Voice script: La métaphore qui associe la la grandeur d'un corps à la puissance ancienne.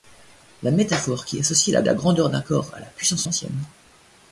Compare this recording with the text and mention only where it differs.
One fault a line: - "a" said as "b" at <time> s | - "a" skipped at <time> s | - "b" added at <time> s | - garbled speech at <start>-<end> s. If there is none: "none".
none